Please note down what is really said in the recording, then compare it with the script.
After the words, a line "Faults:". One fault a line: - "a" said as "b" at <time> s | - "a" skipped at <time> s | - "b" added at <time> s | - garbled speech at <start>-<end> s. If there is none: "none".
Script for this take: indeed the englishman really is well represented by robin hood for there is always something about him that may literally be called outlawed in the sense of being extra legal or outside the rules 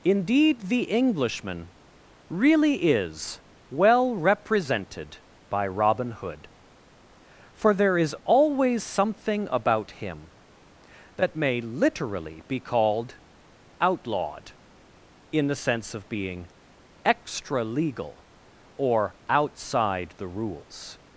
indeed the englishman really is well represented by robin hood for there is always something about him that may literally be called outlawed in the sense of being extra legal or outside the rules
Faults:
none